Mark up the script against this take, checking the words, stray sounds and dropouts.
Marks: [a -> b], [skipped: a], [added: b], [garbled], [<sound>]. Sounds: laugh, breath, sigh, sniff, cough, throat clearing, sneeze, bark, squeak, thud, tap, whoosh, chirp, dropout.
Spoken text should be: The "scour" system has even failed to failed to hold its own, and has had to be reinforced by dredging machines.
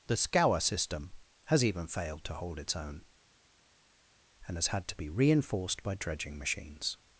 The "scour" system has even failed to [skipped: failed to] hold its own, and has had to be reinforced by dredging machines.